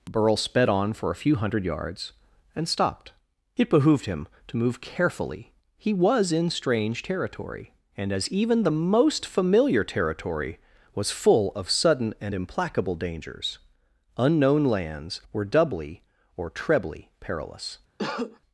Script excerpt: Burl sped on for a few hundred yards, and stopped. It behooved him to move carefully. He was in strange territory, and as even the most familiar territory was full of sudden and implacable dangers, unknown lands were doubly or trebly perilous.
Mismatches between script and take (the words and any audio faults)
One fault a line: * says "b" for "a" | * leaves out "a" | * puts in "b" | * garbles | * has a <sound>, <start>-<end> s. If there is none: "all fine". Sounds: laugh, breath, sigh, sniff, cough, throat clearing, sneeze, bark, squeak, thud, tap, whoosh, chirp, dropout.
* has a cough, 18.0-18.4 s